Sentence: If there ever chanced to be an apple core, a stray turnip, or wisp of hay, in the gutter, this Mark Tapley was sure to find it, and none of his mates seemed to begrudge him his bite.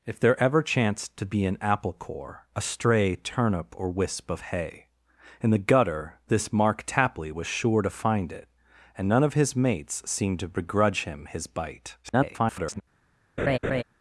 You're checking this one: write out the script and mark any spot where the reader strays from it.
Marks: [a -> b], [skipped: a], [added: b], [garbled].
If there ever chanced to be an apple core, a stray turnip, or wisp of hay, in the gutter, this Mark Tapley was sure to find it, and none of his mates seemed to begrudge him his bite. [garbled]